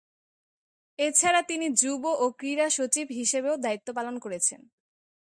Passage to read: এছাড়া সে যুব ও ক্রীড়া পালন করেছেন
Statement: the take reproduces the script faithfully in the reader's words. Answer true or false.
false